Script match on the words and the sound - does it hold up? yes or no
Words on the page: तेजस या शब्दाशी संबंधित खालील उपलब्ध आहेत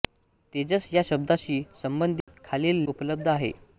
no